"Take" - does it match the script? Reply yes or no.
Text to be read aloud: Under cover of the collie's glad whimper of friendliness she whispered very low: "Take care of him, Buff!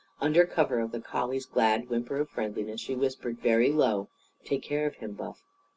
yes